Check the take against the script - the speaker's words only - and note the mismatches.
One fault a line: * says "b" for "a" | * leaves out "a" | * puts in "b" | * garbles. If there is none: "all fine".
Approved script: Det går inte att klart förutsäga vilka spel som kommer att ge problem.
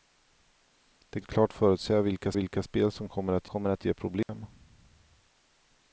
* leaves out "går inte"
* puts in "vilka"
* puts in "kommer att"